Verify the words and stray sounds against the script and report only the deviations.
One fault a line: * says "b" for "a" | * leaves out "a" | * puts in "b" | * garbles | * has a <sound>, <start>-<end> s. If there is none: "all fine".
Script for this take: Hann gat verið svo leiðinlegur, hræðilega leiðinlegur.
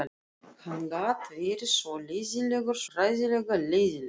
all fine